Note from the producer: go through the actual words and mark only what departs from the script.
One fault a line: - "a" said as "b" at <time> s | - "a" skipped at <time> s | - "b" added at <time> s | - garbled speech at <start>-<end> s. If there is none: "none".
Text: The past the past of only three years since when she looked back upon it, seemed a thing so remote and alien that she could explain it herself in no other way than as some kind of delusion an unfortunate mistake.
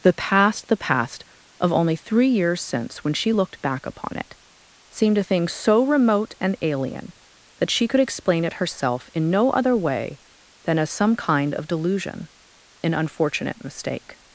none